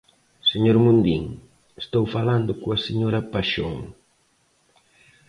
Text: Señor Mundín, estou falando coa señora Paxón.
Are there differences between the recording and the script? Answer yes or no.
no